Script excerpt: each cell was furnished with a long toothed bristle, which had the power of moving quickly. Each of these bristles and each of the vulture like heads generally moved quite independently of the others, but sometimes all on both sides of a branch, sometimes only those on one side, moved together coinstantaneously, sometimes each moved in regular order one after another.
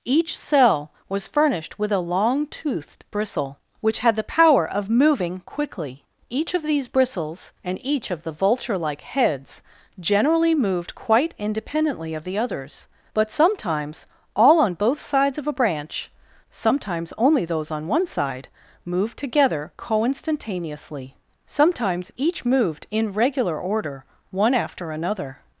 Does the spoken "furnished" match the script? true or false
true